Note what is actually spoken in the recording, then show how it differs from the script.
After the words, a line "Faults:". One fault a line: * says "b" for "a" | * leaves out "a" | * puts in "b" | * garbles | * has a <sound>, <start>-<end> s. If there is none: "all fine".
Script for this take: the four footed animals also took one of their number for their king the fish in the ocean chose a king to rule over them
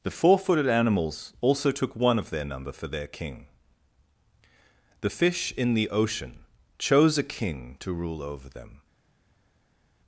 the four footed animals also took one of their number for their king the fish in the ocean chose a king to rule over them
Faults:
all fine